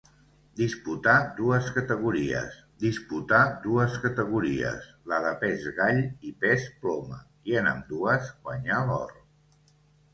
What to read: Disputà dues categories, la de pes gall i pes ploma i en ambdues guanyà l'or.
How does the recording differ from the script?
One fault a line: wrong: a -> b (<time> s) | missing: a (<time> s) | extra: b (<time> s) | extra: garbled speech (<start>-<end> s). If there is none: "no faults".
extra: disputà dues categories (2.8 s)